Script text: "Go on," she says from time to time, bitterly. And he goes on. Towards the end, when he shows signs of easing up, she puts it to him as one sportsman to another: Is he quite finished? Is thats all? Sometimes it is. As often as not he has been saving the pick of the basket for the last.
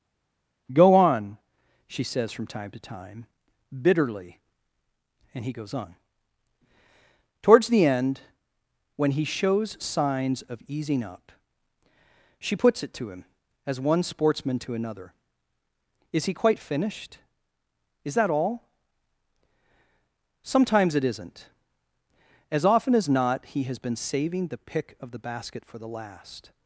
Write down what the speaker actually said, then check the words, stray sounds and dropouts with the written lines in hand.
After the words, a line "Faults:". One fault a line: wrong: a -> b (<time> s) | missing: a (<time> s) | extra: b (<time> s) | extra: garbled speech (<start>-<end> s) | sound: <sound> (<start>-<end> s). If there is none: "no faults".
"Go on," she says from time to time, bitterly. And he goes on. Towards the end, when he shows signs of easing up, she puts it to him as one sportsman to another: Is he quite finished? Is that all? Sometimes it isn't. As often as not he has been saving the pick of the basket for the last.
Faults:
wrong: thats -> that (18.1 s)
wrong: is -> isn't (21.0 s)